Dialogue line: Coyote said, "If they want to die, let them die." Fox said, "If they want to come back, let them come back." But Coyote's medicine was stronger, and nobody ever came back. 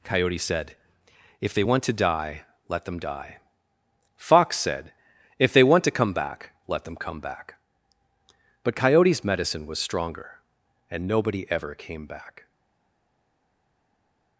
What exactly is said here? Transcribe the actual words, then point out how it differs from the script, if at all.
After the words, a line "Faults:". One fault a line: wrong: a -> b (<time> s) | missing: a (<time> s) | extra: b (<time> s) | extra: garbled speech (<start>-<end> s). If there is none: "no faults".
Coyote said, "If they want to die, let them die." Fox said, "If they want to come back, let them come back." But Coyote's medicine was stronger, and nobody ever came back.
Faults:
no faults